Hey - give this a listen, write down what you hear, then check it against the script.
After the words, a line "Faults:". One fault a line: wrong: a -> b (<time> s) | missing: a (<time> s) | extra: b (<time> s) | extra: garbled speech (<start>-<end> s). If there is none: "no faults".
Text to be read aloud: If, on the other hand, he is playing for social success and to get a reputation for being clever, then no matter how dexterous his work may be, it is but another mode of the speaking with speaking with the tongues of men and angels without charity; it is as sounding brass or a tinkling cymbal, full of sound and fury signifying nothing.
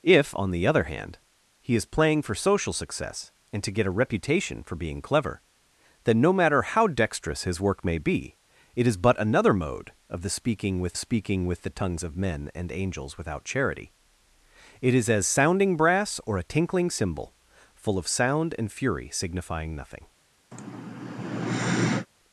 If, on the other hand, he is playing for social success and to get a reputation for being clever, then no matter how dexterous his work may be, it is but another mode of the speaking with speaking with the tongues of men and angels without charity; it is as sounding brass or a tinkling cymbal, full of sound and fury signifying nothing.
Faults:
no faults